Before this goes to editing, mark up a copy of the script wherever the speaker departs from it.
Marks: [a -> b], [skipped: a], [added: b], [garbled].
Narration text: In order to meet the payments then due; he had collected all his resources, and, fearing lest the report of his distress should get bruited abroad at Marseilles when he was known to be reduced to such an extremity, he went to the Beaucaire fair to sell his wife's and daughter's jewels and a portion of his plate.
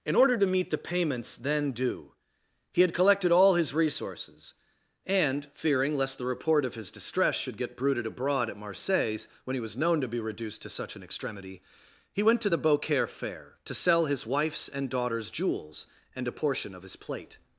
In order to meet the payments then due; he had collected all his resources, and, fearing lest the report of his distress should get bruited abroad at Marseilles when he was known to be reduced to such an extremity, he went to the Beaucaire fair to sell his wife's and daughter's jewels and a portion of his plate.